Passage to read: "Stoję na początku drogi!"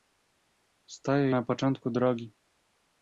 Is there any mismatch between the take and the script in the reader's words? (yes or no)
no